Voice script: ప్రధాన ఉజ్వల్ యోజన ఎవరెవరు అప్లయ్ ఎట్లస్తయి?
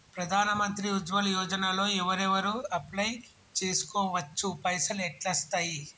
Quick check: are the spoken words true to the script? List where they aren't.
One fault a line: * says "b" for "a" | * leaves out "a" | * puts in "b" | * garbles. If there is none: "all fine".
* puts in "మంత్రి"
* puts in "లో"
* puts in "చేస్కోవచ్చు పైసల్"